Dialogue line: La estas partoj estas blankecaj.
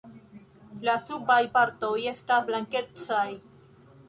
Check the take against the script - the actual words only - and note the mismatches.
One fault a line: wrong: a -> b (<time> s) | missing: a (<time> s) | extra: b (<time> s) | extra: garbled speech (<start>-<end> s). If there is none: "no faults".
wrong: estas -> subaj (1.1 s)